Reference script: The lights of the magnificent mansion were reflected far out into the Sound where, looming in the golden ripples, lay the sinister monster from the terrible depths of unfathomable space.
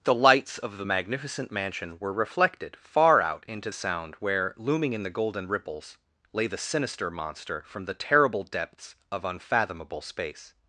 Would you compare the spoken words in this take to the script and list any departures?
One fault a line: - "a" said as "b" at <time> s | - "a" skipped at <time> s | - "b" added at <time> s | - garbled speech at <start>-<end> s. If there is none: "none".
- "the" skipped at 3.7 s